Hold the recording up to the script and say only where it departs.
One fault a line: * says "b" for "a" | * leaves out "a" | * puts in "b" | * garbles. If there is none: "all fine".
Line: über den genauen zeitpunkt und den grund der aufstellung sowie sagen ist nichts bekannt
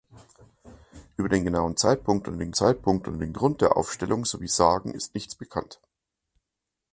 * puts in "zeitpunkt und den"